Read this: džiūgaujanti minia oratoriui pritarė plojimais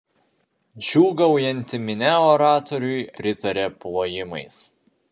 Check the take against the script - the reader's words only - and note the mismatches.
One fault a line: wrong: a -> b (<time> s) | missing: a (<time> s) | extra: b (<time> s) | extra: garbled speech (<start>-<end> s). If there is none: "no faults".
no faults